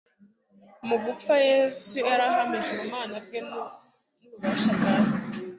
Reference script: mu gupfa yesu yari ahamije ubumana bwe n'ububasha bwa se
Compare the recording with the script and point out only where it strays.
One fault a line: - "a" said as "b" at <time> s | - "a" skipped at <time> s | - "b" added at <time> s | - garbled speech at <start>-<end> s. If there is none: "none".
none